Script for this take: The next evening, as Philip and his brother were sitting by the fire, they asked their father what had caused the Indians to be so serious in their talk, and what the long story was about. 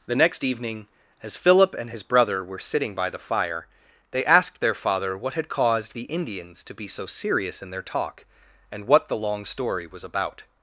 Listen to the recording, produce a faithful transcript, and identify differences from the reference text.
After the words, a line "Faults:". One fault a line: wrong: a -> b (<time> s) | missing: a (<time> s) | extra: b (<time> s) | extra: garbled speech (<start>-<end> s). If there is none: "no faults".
The next evening, as Philip and his brother were sitting by the fire, they asked their father what had caused the Indians to be so serious in their talk, and what the long story was about.
Faults:
no faults